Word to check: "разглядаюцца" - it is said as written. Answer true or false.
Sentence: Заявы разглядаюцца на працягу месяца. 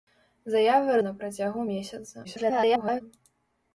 false